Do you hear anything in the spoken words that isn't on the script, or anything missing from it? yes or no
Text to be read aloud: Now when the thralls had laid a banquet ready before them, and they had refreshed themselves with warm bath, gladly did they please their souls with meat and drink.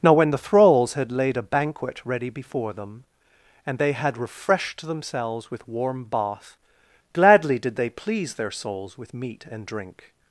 no